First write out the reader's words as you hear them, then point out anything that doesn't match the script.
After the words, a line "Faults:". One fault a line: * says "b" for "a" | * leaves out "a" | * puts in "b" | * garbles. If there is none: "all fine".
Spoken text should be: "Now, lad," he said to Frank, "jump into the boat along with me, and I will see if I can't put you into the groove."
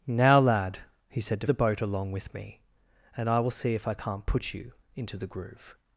"Now, lad," he said to The boat along with me, and I will see if I can't put you into the groove."
Faults:
* leaves out "Frank jump into"